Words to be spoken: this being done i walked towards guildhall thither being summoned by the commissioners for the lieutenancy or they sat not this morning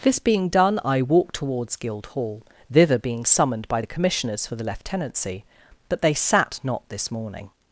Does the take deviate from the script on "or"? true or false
true